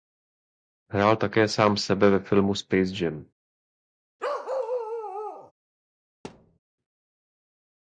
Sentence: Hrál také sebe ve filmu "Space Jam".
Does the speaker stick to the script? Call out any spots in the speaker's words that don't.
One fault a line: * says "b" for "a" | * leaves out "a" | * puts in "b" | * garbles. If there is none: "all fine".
* puts in "sám"